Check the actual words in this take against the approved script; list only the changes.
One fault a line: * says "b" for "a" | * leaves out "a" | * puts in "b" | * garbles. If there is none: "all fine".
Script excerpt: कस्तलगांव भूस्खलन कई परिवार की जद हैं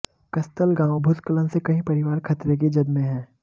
* puts in "से"
* puts in "खतरे"
* puts in "में"